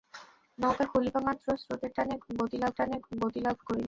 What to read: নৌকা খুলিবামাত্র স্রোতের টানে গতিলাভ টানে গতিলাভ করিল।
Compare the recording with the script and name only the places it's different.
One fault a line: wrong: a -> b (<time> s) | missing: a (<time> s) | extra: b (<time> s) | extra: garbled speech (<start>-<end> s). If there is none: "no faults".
no faults